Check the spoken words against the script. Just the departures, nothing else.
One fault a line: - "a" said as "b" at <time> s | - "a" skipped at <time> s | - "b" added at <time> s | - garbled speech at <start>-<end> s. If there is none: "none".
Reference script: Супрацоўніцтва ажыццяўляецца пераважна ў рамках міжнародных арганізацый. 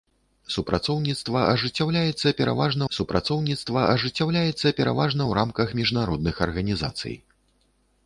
- "супрацоўніцтва ажыццяўляецца пераважна" added at 2.9 s